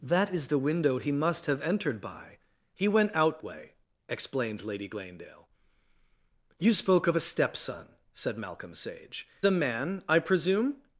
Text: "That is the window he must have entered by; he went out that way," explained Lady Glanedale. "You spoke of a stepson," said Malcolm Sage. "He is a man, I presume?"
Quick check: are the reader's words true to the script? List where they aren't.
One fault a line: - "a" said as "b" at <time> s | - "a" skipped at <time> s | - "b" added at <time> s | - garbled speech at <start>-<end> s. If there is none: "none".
- "that" skipped at 3.4 s
- "He is" skipped at 9.3 s